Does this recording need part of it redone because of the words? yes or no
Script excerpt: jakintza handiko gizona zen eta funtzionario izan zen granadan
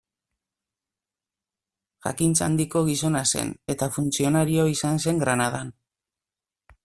no